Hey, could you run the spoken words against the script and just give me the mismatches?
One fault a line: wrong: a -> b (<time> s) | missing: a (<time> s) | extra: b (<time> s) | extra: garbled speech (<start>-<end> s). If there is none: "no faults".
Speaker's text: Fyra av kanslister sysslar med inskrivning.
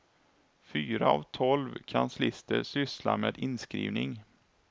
extra: tolv (1.2 s)